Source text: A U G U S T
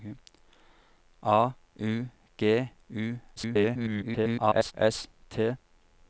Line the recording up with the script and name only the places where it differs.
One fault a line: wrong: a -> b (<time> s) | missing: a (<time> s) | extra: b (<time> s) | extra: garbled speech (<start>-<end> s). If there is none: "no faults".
extra: garbled speech (3.4-4.7 s)